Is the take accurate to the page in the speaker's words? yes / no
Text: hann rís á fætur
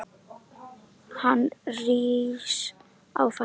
yes